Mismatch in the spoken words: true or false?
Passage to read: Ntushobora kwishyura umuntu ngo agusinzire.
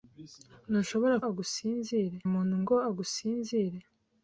true